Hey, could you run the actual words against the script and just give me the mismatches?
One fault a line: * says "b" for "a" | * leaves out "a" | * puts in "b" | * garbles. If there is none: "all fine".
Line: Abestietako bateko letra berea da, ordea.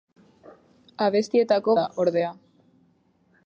* leaves out "bateko letra berea"